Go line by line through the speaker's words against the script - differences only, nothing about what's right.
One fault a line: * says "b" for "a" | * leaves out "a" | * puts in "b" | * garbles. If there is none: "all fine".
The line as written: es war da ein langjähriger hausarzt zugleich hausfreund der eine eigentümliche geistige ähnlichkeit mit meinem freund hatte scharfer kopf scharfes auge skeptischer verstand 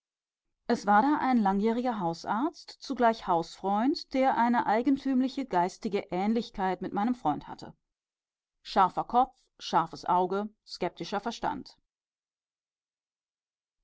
all fine